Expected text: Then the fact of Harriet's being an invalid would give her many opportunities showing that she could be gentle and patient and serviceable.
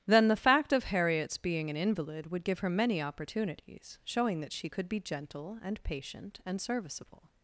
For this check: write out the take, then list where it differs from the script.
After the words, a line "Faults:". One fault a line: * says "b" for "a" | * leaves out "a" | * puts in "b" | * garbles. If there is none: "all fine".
Then the fact of Harriet's being an invalid would give her many opportunities showing that she could be gentle and patient and serviceable.
Faults:
all fine